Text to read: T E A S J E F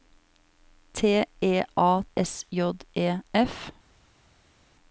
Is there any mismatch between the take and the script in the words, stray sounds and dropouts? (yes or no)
no